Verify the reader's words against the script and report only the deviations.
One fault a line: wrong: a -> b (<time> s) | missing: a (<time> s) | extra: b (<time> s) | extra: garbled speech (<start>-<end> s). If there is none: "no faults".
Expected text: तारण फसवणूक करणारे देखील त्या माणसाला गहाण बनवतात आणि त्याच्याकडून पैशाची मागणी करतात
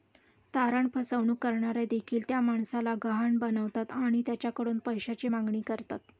no faults